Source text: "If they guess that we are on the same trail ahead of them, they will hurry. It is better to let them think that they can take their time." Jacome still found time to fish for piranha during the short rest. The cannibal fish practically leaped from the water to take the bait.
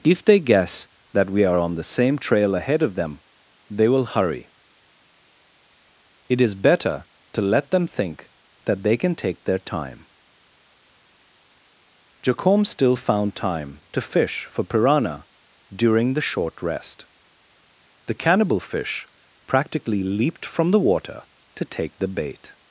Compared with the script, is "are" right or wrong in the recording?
right